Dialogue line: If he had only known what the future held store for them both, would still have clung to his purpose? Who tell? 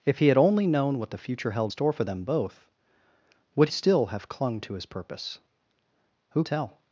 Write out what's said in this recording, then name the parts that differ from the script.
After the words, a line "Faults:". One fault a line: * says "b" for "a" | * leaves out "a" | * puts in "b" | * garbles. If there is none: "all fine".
If he had only known what the future held store for them both, would still have clung to his purpose? Who tell?
Faults:
all fine